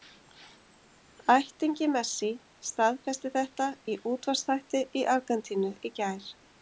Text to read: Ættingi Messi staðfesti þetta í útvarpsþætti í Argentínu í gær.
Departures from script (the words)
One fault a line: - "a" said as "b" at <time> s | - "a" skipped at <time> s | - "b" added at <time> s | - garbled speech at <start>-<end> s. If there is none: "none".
none